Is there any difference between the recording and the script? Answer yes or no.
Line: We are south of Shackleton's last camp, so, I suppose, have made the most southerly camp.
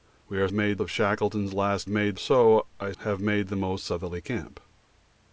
yes